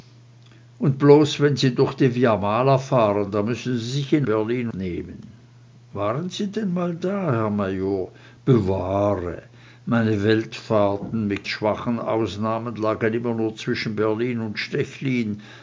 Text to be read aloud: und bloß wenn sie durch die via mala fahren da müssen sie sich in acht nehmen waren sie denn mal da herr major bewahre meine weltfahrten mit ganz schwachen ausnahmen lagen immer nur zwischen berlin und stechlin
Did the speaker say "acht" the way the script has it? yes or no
no